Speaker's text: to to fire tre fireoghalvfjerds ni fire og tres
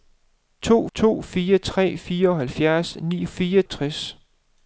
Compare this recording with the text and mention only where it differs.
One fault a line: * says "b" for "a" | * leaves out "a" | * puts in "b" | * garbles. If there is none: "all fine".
all fine